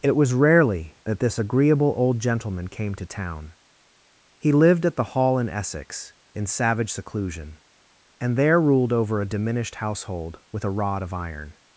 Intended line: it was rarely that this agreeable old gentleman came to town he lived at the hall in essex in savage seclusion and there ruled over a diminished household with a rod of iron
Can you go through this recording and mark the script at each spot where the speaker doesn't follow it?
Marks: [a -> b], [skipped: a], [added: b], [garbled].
it was rarely that this agreeable old gentleman came to town he lived at the hall in essex in savage seclusion and there ruled over a diminished household with a rod of iron